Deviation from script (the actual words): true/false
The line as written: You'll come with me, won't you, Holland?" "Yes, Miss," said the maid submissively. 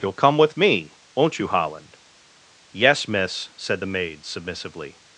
false